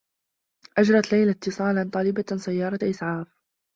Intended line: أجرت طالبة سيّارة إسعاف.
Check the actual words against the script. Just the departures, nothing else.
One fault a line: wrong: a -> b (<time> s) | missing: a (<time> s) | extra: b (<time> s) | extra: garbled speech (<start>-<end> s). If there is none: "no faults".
extra: ليلى اتّصالا (1.1 s)